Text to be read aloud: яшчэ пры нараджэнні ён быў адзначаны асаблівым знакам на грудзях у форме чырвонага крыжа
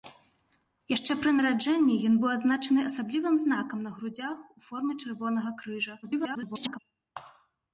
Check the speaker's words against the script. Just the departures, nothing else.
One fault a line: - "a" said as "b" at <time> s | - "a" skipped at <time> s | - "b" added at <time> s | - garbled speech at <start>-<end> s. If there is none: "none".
- garbled speech at 6.0-6.8 s